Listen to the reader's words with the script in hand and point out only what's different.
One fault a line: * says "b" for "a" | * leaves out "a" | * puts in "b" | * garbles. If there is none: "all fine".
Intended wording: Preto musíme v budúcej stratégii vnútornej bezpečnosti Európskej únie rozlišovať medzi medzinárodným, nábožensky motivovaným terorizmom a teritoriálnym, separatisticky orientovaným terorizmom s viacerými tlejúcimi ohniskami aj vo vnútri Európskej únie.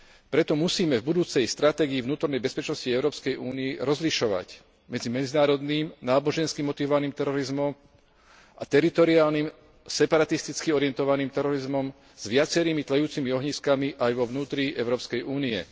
all fine